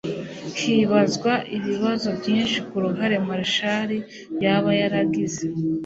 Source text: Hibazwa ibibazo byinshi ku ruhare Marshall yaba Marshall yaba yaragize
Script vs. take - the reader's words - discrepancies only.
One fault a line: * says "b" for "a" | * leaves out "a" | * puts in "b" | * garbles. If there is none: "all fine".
* leaves out "Marshall yaba"